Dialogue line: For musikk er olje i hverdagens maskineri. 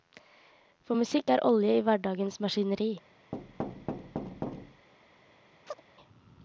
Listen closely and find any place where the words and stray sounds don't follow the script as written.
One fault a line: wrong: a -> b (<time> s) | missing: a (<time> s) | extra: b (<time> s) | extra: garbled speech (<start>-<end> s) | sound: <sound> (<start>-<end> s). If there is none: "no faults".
sound: thud (3.3-4.9 s)
sound: chirp (5.7-5.8 s)